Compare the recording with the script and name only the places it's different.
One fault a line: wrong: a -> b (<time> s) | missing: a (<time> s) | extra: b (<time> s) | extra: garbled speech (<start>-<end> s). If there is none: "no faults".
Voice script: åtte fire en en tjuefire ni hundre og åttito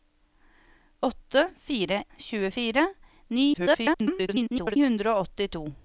missing: en en (2.0 s)
extra: garbled speech (3.5-4.8 s)